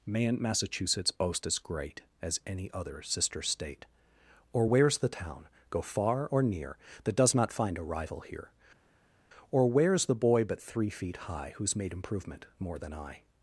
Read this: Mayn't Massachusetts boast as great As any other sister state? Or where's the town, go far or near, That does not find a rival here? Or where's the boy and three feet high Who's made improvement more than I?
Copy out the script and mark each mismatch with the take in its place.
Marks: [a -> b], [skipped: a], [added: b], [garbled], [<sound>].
Mayn't Massachusetts boast as great As any other sister state? Or where's the town, go far or near, That does not find a rival here? Or where's the boy [and -> but] three feet high Who's made improvement more than I?